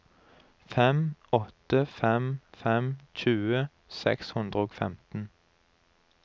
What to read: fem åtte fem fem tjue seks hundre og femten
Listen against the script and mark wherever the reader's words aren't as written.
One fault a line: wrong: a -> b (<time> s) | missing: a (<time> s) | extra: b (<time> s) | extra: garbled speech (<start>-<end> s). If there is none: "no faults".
no faults